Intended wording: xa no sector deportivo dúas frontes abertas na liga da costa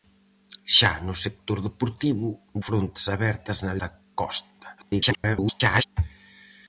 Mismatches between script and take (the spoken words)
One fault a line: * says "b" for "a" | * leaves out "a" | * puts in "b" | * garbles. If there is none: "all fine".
* leaves out "dúas"
* leaves out "liga"
* garbles